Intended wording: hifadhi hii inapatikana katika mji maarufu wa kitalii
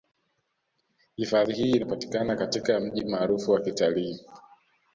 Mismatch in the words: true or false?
false